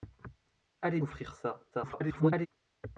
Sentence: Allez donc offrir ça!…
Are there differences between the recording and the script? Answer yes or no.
yes